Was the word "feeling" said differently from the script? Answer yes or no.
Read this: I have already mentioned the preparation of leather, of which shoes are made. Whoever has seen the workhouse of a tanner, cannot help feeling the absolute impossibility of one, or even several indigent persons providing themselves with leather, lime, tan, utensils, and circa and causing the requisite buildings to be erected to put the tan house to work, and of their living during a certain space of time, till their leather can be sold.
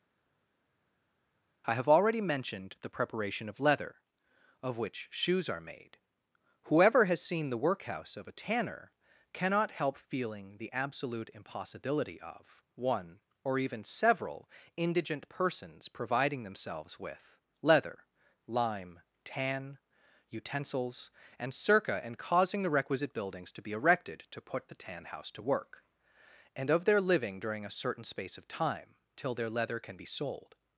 no